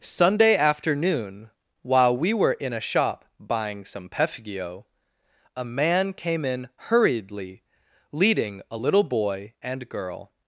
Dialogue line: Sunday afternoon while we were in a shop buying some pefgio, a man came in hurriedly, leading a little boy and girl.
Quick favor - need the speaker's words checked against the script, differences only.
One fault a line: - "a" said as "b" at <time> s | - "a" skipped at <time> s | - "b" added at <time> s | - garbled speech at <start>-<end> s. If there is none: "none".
none